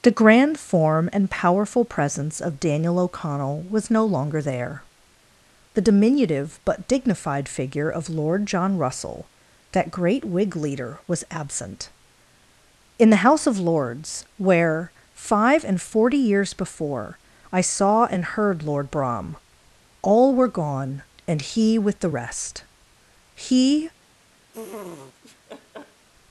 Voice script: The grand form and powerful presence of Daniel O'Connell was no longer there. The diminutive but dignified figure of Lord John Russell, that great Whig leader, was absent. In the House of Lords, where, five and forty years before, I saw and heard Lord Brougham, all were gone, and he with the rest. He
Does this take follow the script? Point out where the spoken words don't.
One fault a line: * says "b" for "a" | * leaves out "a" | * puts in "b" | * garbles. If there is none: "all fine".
all fine